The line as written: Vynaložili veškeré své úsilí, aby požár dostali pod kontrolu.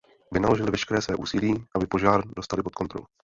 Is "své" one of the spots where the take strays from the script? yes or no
no